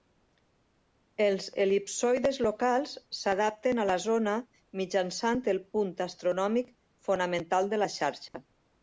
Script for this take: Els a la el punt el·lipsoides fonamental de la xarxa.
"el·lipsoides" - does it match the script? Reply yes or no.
no